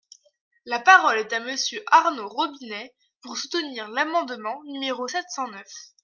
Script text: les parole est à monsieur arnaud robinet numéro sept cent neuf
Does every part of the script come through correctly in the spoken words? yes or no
no